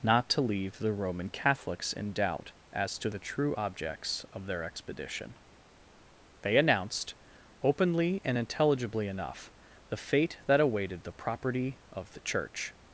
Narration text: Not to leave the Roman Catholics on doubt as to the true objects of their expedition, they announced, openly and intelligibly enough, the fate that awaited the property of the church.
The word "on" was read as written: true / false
false